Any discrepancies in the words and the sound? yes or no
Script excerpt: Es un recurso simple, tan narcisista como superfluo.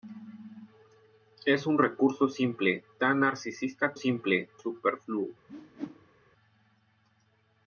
yes